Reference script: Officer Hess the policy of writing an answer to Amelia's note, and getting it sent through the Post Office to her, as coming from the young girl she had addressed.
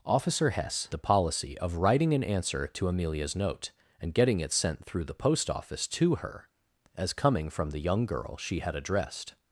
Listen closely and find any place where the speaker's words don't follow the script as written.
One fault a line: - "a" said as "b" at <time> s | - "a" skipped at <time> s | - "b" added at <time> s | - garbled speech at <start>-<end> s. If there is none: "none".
none